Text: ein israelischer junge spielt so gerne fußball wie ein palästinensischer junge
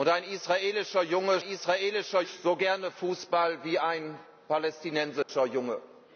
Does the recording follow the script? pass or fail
fail